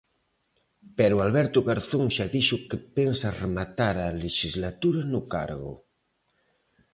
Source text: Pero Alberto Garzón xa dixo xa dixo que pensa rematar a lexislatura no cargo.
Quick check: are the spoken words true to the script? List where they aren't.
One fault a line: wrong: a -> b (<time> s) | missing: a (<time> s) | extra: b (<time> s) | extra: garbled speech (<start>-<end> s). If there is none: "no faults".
missing: xa dixo (2.6 s)